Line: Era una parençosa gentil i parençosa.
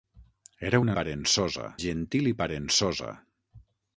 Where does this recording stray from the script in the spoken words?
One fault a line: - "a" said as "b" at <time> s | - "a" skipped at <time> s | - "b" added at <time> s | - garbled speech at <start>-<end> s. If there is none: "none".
none